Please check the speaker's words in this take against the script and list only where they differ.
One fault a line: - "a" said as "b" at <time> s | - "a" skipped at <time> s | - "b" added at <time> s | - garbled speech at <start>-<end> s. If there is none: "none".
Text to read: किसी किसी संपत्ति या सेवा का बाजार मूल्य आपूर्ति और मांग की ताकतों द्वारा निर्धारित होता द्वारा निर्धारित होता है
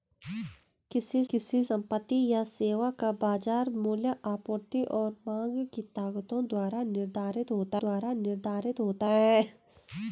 none